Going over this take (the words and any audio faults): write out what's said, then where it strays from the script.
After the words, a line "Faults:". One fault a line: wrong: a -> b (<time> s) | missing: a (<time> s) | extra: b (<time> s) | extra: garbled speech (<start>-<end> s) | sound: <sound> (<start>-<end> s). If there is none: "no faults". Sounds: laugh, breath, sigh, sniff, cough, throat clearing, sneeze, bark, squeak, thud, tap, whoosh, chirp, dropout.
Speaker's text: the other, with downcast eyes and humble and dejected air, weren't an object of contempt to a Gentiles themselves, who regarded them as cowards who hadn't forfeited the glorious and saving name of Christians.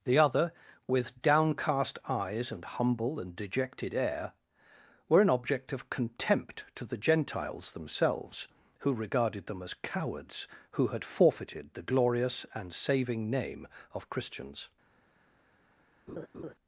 the other, with downcast eyes and humble and dejected air, were an object of contempt to the Gentiles themselves, who regarded them as cowards who had forfeited the glorious and saving name of Christians.
Faults:
wrong: weren't -> were (5.1 s)
wrong: a -> the (6.8 s)
wrong: hadn't -> had (10.9 s)
sound: laugh (16.1-16.5 s)